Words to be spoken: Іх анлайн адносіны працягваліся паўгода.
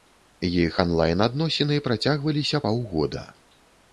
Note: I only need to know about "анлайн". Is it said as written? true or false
true